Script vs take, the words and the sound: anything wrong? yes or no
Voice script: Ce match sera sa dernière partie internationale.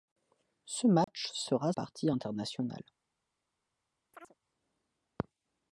yes